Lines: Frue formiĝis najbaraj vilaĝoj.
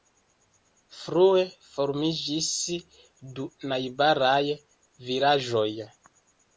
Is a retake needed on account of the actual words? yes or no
yes